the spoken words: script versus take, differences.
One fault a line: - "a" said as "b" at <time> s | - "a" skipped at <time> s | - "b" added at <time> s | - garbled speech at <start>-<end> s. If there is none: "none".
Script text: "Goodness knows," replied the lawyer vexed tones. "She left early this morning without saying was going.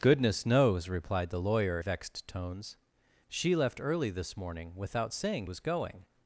none